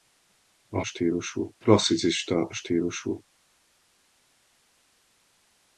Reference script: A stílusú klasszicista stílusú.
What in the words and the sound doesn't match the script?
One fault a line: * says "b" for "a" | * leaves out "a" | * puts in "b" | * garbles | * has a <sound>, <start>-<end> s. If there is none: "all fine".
all fine